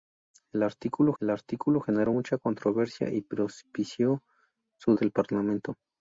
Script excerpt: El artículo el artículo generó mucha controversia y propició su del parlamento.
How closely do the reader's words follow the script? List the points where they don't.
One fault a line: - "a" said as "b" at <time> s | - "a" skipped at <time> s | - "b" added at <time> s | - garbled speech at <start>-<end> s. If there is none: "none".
none